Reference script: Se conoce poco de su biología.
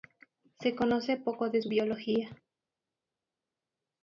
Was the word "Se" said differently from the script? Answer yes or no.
no